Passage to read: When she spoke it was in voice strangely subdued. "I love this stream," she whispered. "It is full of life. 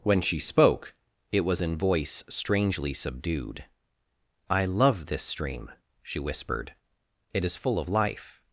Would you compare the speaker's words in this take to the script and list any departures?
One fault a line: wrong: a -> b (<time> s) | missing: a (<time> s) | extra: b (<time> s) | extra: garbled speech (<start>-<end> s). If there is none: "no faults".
no faults